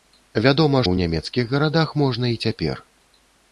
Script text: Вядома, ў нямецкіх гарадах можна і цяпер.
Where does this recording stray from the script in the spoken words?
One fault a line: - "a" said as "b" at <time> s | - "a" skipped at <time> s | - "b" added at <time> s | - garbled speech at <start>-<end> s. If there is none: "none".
none